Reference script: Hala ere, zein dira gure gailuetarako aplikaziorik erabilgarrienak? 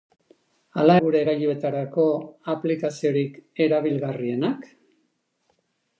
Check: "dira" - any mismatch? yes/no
yes